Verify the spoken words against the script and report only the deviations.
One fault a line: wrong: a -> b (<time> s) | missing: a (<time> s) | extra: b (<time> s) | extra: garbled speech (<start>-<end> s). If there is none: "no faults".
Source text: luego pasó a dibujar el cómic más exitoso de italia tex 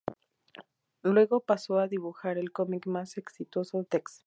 missing: de italia (3.8 s)